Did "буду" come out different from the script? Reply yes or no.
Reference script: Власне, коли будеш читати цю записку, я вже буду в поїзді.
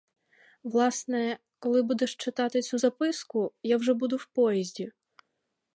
no